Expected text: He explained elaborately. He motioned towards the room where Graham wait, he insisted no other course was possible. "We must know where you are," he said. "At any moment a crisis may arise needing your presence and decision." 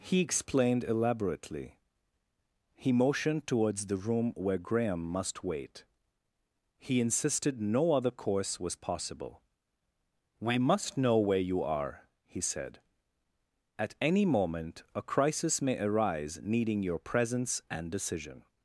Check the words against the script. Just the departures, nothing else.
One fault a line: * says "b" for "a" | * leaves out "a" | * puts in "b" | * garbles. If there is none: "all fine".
* puts in "must"